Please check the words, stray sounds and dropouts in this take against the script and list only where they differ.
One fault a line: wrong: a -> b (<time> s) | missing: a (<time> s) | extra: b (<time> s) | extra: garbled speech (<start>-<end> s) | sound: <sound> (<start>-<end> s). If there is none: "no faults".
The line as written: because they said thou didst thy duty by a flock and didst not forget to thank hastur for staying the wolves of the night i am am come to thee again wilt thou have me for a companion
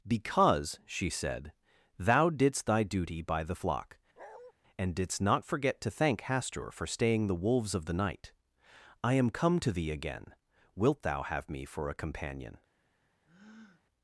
wrong: they -> she (0.9 s)
wrong: a -> the (3.4 s)
sound: bark (4.2-4.5 s)
missing: am (9.3 s)
sound: breath (13.3-13.8 s)